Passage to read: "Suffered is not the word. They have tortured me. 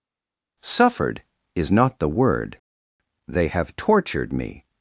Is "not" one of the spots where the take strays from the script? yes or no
no